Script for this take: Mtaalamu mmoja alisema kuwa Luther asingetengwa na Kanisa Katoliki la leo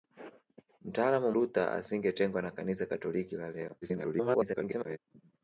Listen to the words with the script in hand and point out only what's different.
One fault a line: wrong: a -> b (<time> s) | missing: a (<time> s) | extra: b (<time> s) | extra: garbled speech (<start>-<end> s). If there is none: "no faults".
missing: mmoja alisema kuwa (1.3 s)
extra: garbled speech (3.8-5.0 s)